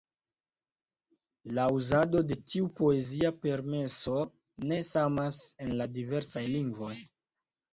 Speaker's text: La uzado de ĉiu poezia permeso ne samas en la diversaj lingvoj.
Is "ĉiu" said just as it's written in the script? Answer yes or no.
no